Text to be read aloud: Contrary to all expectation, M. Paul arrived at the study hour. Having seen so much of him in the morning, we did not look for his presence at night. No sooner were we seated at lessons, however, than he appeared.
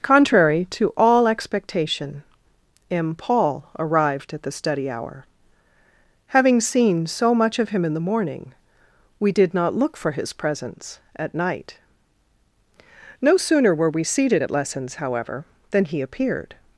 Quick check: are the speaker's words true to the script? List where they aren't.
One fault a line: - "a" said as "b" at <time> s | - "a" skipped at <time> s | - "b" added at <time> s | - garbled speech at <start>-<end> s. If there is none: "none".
none